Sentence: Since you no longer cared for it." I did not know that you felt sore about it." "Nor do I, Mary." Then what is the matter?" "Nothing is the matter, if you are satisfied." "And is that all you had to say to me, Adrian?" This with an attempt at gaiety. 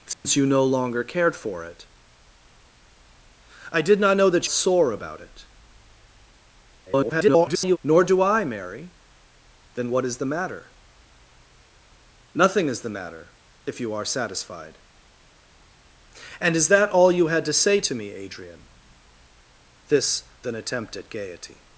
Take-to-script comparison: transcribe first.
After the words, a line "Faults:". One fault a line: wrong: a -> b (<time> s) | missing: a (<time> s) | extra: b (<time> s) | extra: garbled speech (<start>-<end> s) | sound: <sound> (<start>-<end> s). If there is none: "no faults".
Since you no longer cared for it." I did not know that sore about it." [garbled] "Nor do I, Mary." Then what is the matter?" "Nothing is the matter, if you are satisfied." "And is that all you had to say to me, Adrian?" This an attempt at gaiety.
Faults:
sound: dropout (0.1-0.2 s)
missing: you felt (4.5 s)
extra: garbled speech (6.9-7.8 s)
missing: with (20.2 s)